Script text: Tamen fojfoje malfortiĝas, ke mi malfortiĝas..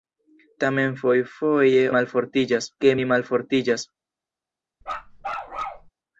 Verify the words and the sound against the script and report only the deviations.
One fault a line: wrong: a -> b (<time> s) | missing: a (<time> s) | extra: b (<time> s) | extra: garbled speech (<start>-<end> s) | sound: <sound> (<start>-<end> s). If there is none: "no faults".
sound: bark (4.8-5.9 s)